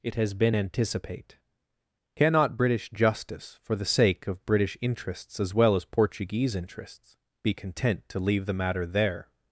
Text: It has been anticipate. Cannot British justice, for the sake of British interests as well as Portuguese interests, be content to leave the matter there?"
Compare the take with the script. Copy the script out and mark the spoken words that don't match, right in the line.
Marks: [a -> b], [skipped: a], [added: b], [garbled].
It has been anticipate. Cannot British justice, for the sake of British interests as well as Portuguese interests, be content to leave the matter there?"